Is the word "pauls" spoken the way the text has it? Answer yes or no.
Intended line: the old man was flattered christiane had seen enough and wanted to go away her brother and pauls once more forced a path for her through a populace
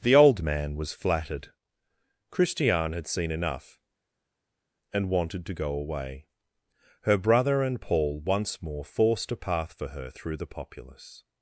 no